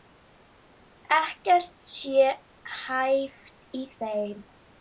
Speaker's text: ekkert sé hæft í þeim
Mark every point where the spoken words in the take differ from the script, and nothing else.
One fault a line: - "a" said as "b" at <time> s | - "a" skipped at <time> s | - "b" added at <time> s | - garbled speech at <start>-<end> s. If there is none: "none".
none